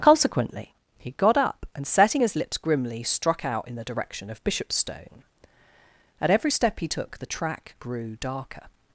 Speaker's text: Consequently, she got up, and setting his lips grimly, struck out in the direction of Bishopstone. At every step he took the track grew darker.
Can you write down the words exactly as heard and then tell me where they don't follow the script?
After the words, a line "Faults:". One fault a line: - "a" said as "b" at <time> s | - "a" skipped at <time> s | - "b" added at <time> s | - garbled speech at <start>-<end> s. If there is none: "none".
Consequently, he got up, and setting his lips grimly, struck out in the direction of Bishopstone. At every step he took the track grew darker.
Faults:
- "she" said as "he" at 1.0 s